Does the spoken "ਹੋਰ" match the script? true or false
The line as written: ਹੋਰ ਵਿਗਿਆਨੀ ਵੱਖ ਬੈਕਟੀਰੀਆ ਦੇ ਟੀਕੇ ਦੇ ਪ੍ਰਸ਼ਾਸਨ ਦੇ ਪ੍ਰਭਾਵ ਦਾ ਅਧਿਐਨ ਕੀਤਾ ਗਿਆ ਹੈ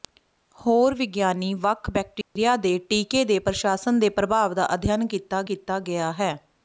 true